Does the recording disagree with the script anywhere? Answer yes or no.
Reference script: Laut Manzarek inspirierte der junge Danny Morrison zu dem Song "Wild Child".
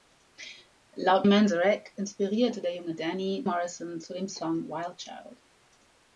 no